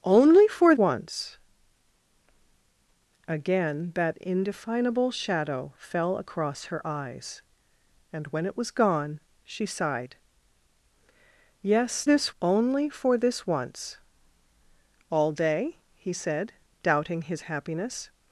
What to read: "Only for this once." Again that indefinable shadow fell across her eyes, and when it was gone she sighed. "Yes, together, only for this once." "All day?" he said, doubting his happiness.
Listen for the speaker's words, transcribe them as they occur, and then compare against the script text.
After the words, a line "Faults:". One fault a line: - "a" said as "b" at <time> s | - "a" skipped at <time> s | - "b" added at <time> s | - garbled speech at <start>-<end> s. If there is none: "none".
"Only for once." Again that indefinable shadow fell across her eyes, and when it was gone she sighed. "Yes, this, only for this once." "All day?" he said, doubting his happiness.
Faults:
- "this" skipped at 0.8 s
- "together" said as "this" at 12.0 s